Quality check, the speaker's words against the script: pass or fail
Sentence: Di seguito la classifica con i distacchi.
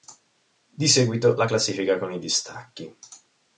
pass